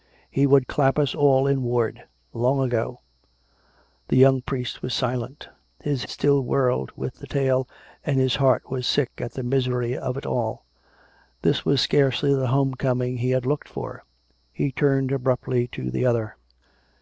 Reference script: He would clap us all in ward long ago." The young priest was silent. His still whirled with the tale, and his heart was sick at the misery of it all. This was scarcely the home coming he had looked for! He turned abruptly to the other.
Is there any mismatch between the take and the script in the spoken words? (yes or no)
no